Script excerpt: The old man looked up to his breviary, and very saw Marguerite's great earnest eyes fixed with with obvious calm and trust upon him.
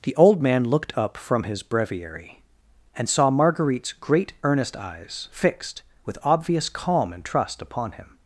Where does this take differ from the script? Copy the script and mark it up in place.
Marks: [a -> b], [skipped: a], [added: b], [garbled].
The old man looked up [to -> from] his breviary, and [skipped: very] saw Marguerite's great earnest eyes fixed with [skipped: with] obvious calm and trust upon him.